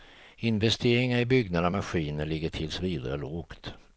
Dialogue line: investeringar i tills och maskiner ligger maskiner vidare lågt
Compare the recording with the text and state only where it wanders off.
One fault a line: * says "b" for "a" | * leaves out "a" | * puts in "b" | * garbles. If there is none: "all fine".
* says "byggnader" for "tills"
* says "tills" for "maskiner"